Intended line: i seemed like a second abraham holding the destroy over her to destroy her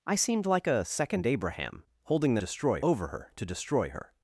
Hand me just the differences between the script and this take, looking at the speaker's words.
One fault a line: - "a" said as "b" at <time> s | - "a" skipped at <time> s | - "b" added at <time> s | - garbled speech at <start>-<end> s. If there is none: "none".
none